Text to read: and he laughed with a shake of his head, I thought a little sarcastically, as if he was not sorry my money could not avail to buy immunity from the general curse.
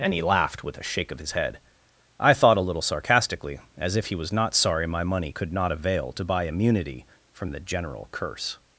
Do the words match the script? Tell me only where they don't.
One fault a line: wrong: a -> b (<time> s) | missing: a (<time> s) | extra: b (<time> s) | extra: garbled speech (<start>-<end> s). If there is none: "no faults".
no faults